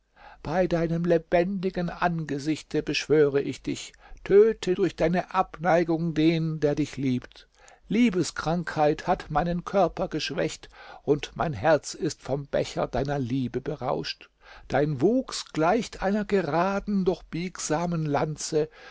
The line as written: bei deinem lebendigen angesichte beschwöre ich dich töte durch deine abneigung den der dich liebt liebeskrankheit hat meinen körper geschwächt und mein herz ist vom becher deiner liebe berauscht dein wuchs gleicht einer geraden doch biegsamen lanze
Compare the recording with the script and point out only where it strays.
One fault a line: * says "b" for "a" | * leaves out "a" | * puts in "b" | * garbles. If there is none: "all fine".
all fine